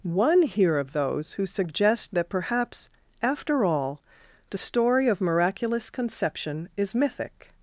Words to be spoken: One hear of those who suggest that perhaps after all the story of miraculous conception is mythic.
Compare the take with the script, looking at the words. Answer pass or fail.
pass